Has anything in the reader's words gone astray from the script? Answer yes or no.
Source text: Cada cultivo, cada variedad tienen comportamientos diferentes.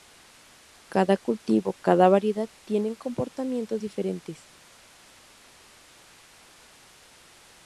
no